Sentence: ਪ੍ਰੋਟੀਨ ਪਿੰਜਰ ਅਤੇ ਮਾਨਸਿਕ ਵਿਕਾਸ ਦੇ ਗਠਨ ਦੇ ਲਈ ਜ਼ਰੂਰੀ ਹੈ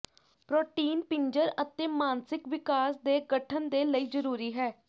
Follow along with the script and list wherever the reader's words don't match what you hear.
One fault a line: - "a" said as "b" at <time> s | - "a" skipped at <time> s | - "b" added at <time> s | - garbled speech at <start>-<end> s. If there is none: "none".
none